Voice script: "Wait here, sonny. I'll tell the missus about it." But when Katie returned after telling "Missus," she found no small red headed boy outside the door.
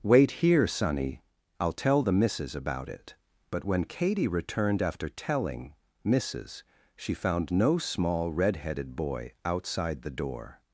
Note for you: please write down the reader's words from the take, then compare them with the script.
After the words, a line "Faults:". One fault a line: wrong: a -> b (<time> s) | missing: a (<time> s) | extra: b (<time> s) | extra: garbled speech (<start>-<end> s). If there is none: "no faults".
"Wait here, sonny. I'll tell the missus about it." But when Katie returned after telling "Missus," she found no small red headed boy outside the door.
Faults:
no faults